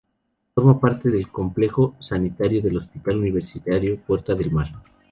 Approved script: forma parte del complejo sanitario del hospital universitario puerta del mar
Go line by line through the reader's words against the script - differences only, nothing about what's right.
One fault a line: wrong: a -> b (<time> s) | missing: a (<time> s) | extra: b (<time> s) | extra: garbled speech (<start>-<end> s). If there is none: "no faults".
no faults